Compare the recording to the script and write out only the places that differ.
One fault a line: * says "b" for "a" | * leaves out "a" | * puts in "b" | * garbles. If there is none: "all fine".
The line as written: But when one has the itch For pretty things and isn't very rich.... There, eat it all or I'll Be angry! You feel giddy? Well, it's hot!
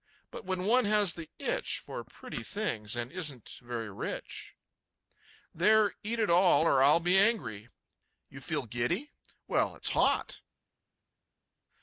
all fine